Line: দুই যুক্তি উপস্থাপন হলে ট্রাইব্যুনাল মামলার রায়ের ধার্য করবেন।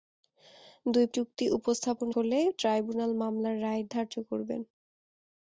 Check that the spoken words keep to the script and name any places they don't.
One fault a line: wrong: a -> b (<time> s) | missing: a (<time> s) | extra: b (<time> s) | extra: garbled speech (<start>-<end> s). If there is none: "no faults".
no faults